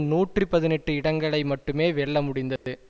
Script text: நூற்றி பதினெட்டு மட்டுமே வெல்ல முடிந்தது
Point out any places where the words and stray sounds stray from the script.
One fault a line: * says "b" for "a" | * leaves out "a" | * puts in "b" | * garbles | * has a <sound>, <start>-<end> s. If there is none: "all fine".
* puts in "இடங்களை"
* has a dropout, 2.6-2.7 s